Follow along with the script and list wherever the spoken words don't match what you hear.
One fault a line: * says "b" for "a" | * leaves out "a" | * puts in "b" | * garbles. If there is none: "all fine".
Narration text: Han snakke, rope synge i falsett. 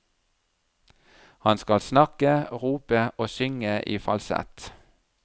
* puts in "skal"
* puts in "og"